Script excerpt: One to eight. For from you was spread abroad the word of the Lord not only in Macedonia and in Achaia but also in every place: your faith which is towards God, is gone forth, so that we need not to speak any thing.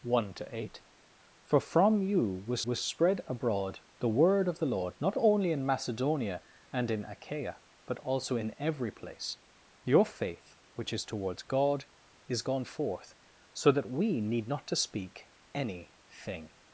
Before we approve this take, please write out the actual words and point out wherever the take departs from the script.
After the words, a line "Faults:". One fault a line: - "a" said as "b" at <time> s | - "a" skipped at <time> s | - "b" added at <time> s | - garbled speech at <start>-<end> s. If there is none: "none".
One to eight. For from you was was spread abroad the word of the Lord not only in Macedonia and in Achaia but also in every place: your faith which is towards God, is gone forth, so that we need not to speak any thing.
Faults:
- "was" added at 2.7 s